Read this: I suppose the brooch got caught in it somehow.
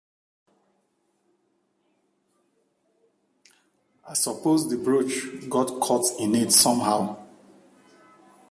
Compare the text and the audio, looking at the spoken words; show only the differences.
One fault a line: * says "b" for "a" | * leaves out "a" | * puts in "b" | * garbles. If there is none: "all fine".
all fine